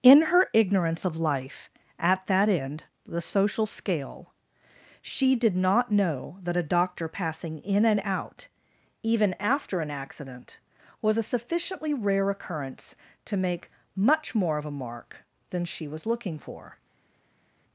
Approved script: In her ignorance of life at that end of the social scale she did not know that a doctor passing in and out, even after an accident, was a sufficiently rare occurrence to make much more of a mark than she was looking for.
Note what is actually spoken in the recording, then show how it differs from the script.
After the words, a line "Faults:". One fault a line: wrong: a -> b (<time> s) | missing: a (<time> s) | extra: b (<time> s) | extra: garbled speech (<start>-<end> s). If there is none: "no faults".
In her ignorance of life at that end the social scale she did not know that a doctor passing in and out, even after an accident, was a sufficiently rare occurrence to make much more of a mark than she was looking for.
Faults:
missing: of (2.9 s)